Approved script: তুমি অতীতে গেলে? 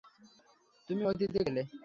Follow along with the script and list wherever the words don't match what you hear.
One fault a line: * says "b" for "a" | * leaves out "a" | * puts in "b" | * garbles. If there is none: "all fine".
all fine